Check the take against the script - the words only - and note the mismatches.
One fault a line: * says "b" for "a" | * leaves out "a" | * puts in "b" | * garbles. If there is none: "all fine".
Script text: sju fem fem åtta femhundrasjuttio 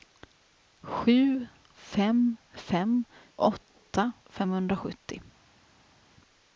all fine